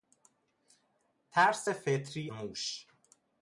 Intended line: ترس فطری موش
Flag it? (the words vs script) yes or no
no